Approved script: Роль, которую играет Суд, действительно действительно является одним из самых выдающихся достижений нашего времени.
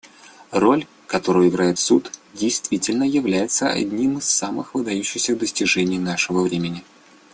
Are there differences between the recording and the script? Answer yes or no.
yes